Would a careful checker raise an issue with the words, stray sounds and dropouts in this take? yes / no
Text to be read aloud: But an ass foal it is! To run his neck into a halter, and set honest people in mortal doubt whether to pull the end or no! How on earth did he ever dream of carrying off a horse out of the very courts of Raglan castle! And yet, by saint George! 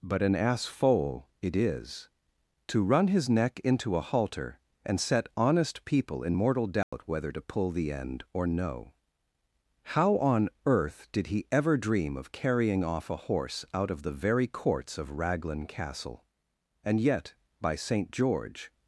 yes